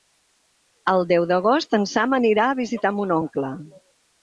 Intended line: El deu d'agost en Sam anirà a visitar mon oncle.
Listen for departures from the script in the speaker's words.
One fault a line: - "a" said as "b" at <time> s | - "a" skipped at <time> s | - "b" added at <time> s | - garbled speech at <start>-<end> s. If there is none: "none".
none